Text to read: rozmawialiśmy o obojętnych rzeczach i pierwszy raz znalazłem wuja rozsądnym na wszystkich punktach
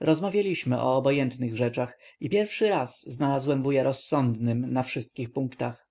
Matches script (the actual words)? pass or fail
pass